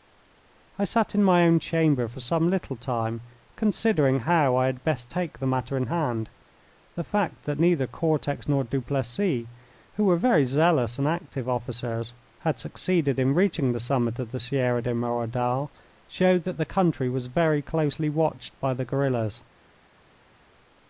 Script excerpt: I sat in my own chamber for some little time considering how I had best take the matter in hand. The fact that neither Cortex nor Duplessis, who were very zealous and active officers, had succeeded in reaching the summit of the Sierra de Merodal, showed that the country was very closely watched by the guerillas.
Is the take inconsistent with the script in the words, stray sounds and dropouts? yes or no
no